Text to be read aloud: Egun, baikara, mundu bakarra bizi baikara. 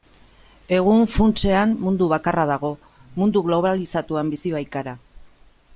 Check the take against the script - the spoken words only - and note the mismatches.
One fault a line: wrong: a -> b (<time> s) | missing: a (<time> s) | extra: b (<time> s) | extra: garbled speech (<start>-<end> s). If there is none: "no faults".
wrong: baikara -> funtsean (1.1 s)
extra: dago mundu globalizatuan (2.5 s)